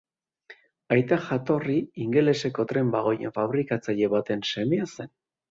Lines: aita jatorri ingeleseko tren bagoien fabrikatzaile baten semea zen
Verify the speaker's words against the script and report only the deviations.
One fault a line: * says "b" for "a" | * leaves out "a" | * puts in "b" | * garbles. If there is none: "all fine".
all fine